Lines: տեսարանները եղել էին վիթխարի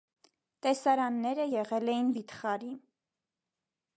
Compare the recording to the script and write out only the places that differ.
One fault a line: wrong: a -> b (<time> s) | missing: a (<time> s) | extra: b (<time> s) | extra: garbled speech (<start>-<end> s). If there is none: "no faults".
no faults